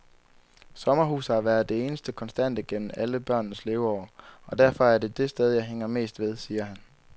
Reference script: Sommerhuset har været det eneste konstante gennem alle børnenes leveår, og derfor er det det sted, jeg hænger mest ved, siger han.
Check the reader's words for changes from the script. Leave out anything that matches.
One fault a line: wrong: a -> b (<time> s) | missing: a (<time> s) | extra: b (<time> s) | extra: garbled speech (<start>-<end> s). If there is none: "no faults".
no faults